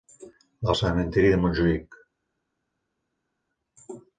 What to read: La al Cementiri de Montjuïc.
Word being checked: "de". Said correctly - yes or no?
yes